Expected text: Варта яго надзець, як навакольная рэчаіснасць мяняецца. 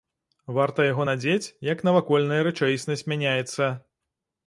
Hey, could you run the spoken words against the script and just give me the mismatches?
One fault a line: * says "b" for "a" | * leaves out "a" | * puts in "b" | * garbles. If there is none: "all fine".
all fine